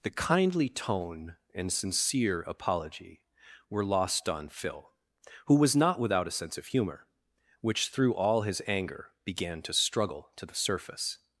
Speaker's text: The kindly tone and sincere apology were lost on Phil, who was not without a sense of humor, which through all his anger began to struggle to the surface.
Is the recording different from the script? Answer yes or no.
no